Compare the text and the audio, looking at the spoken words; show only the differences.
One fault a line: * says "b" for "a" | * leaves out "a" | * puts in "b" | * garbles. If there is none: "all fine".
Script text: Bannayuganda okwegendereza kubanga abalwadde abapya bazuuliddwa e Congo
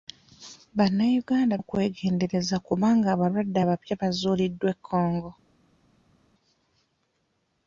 all fine